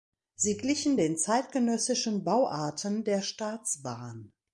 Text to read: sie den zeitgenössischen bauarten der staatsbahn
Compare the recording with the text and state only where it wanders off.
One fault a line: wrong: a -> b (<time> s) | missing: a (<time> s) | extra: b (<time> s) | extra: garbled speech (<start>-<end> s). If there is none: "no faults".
extra: glichen (0.6 s)